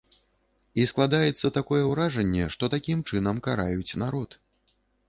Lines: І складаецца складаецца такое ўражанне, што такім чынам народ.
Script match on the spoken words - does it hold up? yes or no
no